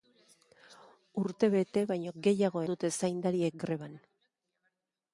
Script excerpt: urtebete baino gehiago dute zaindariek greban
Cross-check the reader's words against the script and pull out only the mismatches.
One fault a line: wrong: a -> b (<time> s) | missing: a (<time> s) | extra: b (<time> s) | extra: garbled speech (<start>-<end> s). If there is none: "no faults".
no faults